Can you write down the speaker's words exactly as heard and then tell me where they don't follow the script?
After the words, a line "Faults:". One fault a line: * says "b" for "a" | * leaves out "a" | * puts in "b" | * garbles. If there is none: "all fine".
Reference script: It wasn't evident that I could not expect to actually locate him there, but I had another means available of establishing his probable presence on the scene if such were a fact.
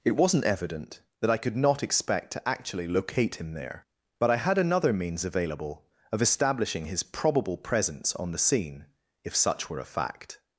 It wasn't evident that I could not expect to actually locate him there, but I had another means available of establishing his probable presence on the scene if such were a fact.
Faults:
all fine